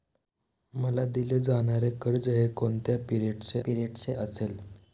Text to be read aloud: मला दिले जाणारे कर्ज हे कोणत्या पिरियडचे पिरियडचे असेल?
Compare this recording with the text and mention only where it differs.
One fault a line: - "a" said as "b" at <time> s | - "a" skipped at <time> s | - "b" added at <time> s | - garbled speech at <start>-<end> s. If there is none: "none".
none